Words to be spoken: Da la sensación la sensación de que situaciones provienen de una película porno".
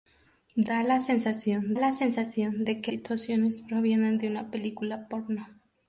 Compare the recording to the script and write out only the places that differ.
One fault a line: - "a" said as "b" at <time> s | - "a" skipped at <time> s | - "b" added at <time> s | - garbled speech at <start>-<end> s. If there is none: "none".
none